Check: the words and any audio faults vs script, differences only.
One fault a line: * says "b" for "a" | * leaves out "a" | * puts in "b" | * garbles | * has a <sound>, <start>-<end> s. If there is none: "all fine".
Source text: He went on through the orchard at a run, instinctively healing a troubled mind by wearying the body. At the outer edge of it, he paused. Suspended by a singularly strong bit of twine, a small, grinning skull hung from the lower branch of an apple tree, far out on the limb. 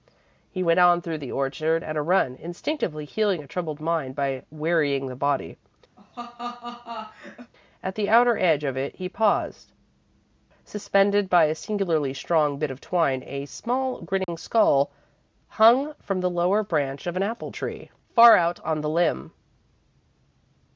* has a laugh, 6.0-7.5 s
* has a dropout, 14.2-14.3 s